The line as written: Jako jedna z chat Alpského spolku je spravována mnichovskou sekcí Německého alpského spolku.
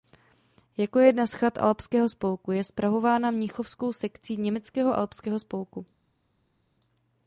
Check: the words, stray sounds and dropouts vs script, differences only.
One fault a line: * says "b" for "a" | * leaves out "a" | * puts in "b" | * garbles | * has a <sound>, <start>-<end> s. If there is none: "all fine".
all fine